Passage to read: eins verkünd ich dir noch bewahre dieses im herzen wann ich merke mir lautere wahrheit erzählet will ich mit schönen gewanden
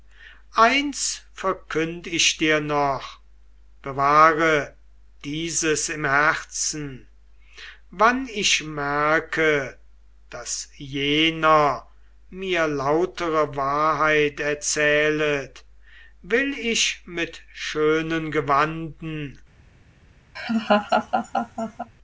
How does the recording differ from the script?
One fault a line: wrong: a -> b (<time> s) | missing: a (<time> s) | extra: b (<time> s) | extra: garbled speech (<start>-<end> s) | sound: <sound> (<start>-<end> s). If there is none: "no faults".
extra: daß jener (10.3 s)
sound: laugh (20.4-21.9 s)